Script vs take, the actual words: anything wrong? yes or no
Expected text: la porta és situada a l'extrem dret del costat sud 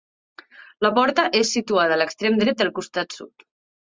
no